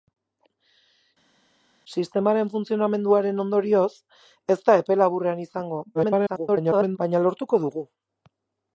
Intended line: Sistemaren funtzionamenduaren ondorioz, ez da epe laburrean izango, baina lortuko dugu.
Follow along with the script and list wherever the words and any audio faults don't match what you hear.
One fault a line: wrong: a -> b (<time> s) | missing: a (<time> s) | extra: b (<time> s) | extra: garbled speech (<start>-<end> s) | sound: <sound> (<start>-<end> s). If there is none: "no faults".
extra: garbled speech (5.9-7.0 s)